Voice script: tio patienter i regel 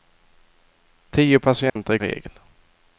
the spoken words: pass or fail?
pass